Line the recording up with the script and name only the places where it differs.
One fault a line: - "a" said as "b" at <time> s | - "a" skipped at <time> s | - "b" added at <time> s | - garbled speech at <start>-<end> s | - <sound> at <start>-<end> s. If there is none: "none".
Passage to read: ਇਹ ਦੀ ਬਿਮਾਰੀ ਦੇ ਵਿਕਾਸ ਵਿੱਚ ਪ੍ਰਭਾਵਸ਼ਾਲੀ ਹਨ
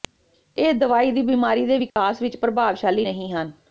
- "ਦਵਾਈ" added at 0.8 s
- dropout at 1.9-2.0 s
- "ਨਹੀ" added at 3.0 s